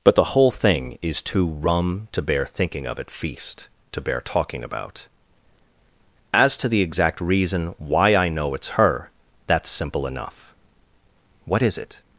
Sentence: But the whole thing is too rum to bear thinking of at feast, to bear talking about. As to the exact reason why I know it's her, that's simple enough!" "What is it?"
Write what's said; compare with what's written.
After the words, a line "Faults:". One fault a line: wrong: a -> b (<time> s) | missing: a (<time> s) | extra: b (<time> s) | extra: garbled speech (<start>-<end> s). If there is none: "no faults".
But the whole thing is too rum to bear thinking of at feast, to bear talking about. As to the exact reason why I know it's her, that's simple enough!" "What is it?"
Faults:
no faults